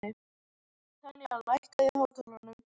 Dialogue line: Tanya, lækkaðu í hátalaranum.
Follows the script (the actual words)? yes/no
yes